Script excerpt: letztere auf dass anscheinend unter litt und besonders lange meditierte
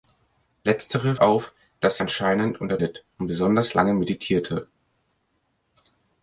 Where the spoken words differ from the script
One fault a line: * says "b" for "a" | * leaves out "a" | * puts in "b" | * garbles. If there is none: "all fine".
all fine